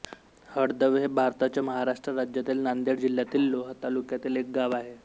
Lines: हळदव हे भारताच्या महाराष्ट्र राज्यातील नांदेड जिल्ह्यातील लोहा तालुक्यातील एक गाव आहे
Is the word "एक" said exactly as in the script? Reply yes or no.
yes